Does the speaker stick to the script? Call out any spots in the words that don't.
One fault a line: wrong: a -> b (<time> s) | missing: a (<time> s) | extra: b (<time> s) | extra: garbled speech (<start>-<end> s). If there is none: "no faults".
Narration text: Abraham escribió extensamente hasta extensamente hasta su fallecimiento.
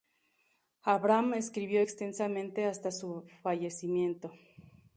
missing: extensamente hasta (2.9 s)